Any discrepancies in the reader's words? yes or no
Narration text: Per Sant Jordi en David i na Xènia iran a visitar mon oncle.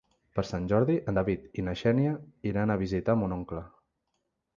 no